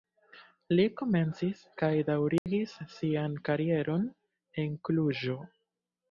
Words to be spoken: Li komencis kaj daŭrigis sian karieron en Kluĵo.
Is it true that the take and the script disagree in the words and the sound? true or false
true